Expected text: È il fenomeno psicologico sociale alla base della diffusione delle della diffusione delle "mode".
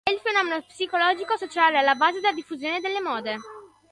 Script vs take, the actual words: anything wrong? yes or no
yes